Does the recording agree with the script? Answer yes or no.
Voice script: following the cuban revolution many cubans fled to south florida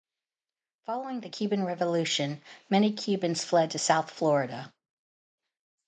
yes